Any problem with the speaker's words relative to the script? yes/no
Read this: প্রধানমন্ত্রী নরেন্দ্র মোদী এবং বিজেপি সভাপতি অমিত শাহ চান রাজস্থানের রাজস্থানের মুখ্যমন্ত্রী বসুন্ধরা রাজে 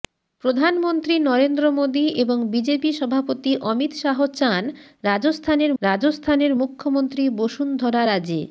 no